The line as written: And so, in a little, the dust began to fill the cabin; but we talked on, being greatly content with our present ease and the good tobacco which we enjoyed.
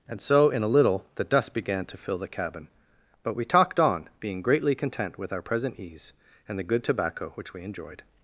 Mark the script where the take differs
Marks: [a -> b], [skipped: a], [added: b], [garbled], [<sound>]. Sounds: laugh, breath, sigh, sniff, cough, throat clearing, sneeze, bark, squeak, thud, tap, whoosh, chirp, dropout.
And so, in a little, the dust began to fill the cabin; but we talked on, being greatly content with our present ease and the good tobacco which we enjoyed.